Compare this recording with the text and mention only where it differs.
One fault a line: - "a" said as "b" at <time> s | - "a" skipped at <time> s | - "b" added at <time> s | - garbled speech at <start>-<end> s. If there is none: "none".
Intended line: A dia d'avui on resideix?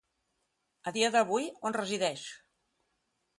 none